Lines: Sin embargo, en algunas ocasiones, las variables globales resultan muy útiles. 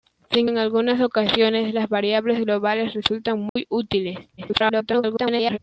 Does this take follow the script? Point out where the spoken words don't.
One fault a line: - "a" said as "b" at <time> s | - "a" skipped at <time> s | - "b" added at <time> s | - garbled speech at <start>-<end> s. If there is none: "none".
- "embargo" skipped at 0.5 s
- garbled speech at 4.4-5.6 s